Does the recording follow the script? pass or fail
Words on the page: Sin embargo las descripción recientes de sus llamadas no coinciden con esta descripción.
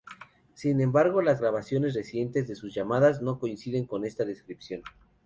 fail